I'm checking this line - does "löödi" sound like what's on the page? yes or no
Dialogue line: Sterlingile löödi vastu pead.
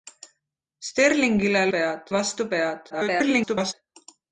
no